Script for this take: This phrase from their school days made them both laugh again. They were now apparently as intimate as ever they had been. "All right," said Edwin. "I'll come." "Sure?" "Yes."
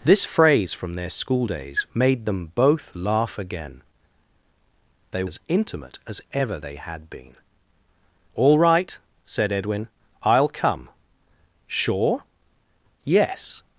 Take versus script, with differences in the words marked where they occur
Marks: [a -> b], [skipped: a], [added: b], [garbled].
This phrase from their school days made them both laugh again. They [skipped: were now apparently] as intimate as ever they had been. "All right," said Edwin. "I'll come." "Sure?" "Yes."